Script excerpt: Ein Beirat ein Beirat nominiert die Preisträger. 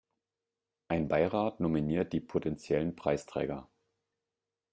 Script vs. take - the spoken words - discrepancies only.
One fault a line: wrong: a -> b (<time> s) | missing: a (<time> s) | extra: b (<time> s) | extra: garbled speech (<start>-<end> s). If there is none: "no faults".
missing: ein Beirat (1.6 s)
extra: potentiellen (2.2 s)